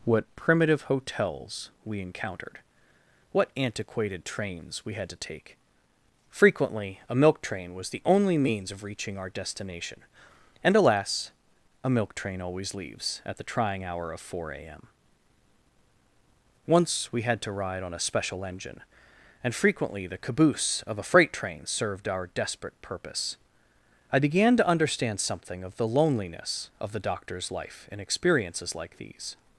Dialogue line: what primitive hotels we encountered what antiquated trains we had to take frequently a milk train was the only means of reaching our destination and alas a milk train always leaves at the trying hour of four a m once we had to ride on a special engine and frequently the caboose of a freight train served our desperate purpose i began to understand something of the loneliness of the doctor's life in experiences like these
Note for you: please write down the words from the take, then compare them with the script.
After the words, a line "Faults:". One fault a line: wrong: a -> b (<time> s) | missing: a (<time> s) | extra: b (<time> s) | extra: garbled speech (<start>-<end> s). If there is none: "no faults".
what primitive hotels we encountered what antiquated trains we had to take frequently a milk train was the only means of reaching our destination and alas a milk train always leaves at the trying hour of four a m once we had to ride on a special engine and frequently the caboose of a freight train served our desperate purpose i began to understand something of the loneliness of the doctor's life in experiences like these
Faults:
no faults